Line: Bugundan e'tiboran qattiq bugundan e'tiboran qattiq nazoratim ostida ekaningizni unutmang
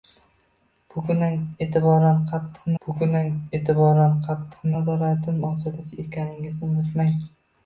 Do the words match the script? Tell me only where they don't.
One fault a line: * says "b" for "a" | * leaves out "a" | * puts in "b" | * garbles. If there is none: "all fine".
all fine